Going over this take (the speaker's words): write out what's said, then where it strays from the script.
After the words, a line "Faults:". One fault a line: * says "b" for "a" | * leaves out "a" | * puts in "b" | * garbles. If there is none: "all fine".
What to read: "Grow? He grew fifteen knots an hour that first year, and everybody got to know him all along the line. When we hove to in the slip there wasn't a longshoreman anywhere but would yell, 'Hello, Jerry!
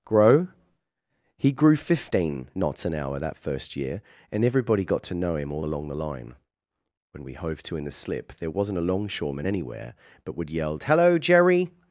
"Grow? He grew fifteen knots an hour that first year, and everybody got to know him all along the line. When we hove to in the slip there wasn't a longshoreman anywhere but would yell, 'Hello, Jerry!
Faults:
all fine